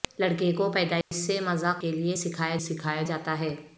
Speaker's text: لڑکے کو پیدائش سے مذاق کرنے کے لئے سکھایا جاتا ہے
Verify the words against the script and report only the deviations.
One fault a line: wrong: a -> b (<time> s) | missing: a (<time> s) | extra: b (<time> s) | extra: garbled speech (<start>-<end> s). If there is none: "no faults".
missing: کرنے (1.8 s)
extra: سکھایا (2.6 s)